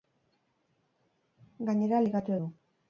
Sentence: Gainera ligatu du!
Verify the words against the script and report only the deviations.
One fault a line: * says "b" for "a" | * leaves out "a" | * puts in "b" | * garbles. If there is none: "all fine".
all fine